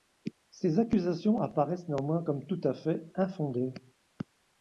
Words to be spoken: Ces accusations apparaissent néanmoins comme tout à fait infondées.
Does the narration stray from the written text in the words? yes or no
no